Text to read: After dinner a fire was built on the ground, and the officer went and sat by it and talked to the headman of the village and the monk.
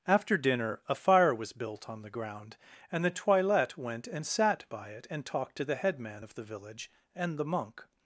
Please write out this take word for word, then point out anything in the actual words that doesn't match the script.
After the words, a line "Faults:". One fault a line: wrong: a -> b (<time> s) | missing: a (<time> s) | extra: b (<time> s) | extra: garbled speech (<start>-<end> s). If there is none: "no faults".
After dinner a fire was built on the ground, and the toilette went and sat by it and talked to the headman of the village and the monk.
Faults:
wrong: officer -> toilette (3.1 s)